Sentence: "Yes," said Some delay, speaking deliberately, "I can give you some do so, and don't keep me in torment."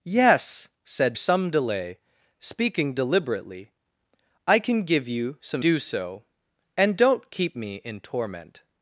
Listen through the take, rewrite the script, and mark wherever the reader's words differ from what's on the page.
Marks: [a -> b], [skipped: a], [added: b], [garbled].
"Yes," said Some delay, speaking deliberately, "I can give you some do so, and don't keep me in torment."